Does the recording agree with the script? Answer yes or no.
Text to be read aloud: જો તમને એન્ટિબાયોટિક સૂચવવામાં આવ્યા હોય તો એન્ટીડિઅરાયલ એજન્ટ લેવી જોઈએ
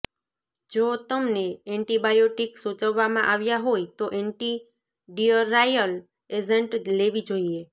yes